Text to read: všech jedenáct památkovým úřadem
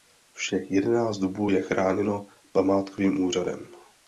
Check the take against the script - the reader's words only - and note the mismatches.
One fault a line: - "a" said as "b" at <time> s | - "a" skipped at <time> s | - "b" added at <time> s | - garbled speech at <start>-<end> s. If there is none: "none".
- "dubů je chráněno" added at 1.2 s